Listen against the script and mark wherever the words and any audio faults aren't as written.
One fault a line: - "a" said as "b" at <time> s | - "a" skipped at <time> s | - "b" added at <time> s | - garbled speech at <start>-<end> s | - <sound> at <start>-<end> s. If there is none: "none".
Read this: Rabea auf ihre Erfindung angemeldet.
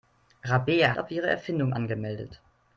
none